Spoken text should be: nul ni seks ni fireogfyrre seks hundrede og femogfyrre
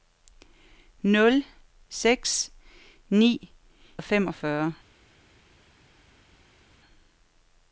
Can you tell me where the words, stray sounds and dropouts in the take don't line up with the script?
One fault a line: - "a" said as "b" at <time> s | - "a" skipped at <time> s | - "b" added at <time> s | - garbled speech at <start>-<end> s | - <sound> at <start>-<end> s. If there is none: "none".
- "ni" skipped at 1.4 s
- "fireogfyrre seks hundrede" skipped at 3.3 s